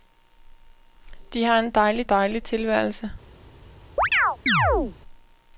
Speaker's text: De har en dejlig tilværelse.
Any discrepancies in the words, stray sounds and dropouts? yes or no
yes